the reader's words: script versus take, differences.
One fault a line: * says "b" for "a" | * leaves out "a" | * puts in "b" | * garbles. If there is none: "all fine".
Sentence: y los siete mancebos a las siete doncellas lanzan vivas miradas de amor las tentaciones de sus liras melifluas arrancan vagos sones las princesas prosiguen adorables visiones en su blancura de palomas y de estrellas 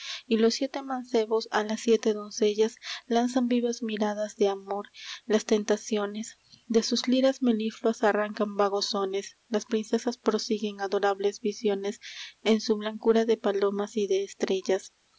all fine